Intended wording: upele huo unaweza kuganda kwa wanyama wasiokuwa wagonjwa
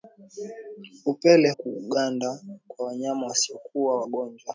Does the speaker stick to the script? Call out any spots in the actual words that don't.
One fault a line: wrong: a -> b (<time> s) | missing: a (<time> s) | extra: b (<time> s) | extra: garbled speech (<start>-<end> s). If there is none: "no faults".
missing: huo unaweza (1.5 s)